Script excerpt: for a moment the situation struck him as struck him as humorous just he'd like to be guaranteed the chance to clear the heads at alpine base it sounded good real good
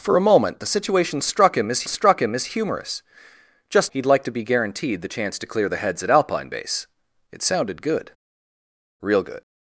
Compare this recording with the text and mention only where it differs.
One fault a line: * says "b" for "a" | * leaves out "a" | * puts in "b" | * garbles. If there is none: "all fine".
all fine